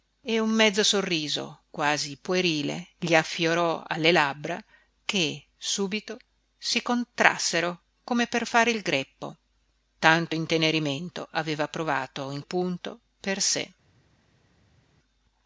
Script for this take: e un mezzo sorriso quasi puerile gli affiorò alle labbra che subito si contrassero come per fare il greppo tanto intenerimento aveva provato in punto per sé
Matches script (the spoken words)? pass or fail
pass